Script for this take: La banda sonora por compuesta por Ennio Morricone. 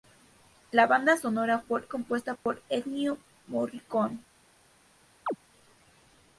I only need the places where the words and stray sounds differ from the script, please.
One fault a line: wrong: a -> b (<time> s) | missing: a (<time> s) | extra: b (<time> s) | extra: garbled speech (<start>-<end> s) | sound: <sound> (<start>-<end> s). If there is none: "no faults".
sound: dropout (2.4-2.5 s)
sound: chirp (5.3-5.4 s)